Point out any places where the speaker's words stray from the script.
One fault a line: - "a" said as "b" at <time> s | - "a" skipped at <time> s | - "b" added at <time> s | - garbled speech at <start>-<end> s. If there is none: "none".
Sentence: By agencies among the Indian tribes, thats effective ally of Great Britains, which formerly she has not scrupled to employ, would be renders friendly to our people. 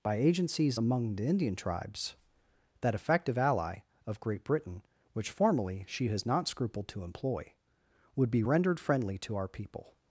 - "thats" said as "that" at 2.8 s
- "Britains" said as "Britain" at 4.4 s
- "renders" said as "rendered" at 8.4 s